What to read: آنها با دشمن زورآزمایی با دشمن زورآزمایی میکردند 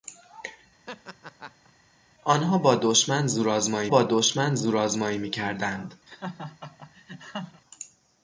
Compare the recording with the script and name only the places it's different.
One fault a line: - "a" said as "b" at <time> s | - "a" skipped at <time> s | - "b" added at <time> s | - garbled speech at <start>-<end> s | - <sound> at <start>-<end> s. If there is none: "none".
- laugh at 0.9-1.7 s
- laugh at 6.1-7.6 s